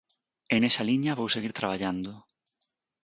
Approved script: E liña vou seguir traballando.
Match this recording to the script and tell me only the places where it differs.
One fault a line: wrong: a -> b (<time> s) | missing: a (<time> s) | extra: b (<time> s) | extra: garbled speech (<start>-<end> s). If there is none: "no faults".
extra: nesa (0.6 s)